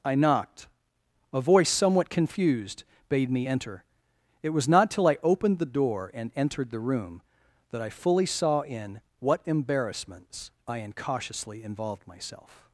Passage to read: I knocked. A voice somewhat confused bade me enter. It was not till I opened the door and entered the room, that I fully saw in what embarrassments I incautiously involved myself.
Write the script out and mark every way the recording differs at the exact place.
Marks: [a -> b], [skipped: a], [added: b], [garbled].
I knocked. A voice somewhat confused bade me enter. It was not till I opened the door and entered the room, that I fully saw in what embarrassments I incautiously involved myself.